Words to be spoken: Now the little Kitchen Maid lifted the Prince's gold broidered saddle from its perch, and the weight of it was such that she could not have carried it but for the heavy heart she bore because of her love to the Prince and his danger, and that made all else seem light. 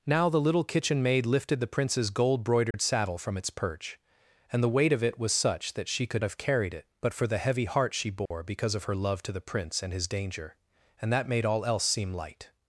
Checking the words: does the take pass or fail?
fail